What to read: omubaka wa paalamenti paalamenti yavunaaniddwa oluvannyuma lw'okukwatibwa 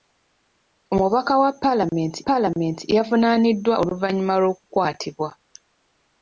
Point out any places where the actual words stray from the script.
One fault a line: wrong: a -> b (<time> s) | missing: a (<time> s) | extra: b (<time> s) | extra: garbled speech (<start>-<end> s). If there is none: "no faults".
no faults